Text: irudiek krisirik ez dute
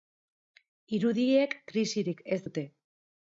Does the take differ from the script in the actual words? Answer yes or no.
no